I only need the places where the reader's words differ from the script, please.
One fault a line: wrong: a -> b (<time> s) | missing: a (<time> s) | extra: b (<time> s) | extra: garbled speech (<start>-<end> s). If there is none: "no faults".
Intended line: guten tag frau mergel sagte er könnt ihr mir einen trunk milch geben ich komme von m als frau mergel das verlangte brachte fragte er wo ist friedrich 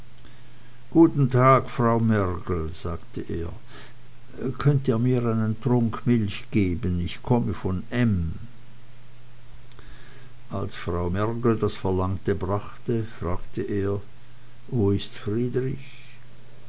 no faults